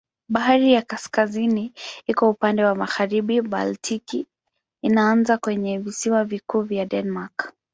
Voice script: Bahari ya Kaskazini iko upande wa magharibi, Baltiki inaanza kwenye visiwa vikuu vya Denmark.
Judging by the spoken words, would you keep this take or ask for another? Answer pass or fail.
pass